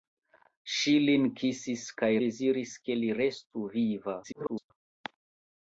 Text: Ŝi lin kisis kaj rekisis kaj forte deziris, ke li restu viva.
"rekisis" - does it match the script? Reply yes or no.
no